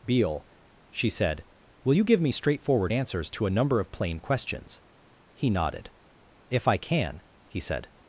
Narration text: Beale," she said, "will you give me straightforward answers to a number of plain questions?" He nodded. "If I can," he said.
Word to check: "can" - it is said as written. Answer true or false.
true